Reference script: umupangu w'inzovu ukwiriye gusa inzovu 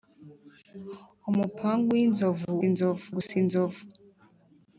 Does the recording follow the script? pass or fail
fail